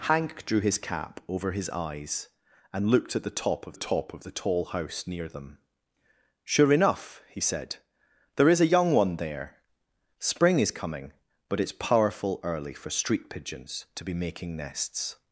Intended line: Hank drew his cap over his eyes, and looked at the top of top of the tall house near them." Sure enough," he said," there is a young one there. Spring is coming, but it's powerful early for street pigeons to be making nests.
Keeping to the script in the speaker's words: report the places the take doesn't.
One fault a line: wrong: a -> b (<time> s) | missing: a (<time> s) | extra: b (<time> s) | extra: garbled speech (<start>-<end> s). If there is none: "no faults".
no faults